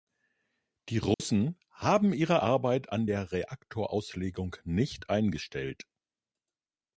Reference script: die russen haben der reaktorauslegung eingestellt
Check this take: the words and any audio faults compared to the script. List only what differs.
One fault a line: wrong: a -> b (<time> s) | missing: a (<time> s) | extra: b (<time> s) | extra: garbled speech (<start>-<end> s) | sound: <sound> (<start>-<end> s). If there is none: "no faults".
sound: dropout (1.1-1.2 s)
extra: ihre arbeit an (2.1 s)
extra: nicht (4.6 s)